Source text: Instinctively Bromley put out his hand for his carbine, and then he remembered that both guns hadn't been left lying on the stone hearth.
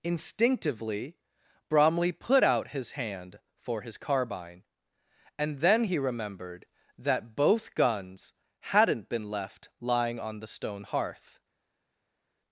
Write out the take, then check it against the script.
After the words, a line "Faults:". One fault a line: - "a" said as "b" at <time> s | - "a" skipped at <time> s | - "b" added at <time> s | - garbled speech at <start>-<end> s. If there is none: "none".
Instinctively Bromley put out his hand for his carbine, and then he remembered that both guns hadn't been left lying on the stone hearth.
Faults:
none